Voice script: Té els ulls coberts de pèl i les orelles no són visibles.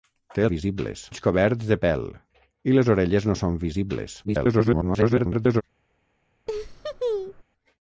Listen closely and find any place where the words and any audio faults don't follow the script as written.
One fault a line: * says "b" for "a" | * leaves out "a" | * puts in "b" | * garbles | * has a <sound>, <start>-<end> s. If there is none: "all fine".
* says "visibles" for "els"
* garbles
* has a laugh, 6.5-7.4 s